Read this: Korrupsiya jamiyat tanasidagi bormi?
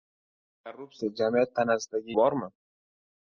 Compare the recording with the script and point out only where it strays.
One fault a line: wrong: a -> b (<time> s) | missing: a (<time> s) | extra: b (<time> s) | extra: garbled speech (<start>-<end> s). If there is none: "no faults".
no faults